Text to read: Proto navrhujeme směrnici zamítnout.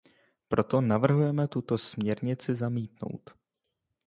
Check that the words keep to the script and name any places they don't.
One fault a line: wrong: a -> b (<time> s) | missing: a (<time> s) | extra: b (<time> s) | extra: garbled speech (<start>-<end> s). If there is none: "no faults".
extra: tuto (1.5 s)